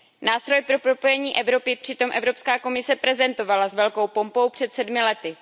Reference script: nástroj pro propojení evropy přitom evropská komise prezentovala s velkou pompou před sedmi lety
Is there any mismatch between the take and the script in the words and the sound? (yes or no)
no